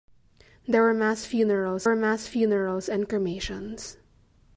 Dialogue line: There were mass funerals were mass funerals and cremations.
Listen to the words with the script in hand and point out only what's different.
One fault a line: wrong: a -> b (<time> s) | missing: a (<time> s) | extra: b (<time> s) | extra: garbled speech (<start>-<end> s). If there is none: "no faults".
no faults